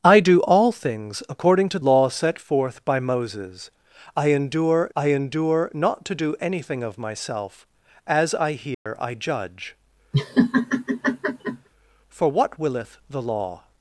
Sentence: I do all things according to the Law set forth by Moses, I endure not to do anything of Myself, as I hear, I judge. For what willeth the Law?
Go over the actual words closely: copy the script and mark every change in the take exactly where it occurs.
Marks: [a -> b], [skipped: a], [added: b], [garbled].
I do all things according to [skipped: the] Law set forth by Moses, I endure [added: I endure] not to do anything of Myself, as I hear, I judge. For what willeth the Law?